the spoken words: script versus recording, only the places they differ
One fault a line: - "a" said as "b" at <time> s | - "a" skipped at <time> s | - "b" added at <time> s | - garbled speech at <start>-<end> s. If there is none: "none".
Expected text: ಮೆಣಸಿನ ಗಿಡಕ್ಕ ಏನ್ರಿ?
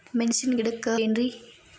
none